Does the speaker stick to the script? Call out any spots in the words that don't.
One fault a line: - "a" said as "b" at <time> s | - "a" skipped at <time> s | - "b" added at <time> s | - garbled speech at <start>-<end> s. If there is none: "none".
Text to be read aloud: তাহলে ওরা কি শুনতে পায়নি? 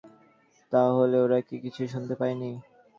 - "কিছুই" added at 1.6 s